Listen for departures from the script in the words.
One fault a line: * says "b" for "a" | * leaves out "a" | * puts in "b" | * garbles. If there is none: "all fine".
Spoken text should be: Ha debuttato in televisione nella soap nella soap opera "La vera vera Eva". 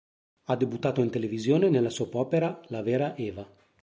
* leaves out "nella soap"
* leaves out "vera"